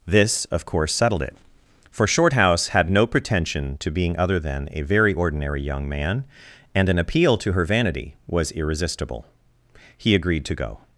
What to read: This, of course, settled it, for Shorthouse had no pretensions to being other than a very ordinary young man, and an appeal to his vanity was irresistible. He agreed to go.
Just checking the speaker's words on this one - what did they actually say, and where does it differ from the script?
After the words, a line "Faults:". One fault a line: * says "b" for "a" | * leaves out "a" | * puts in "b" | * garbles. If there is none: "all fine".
This, of course, settled it, for Shorthouse had no pretension to being other than a very ordinary young man, and an appeal to her vanity was irresistible. He agreed to go.
Faults:
* says "pretension" for "pretensions"
* says "her" for "his"